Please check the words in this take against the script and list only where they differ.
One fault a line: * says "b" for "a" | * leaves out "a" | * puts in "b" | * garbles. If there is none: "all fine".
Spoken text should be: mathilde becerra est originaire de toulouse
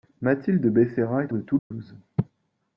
* leaves out "originaire"